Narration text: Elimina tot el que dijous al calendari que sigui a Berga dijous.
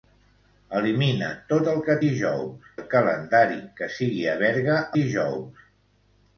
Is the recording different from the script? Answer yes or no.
no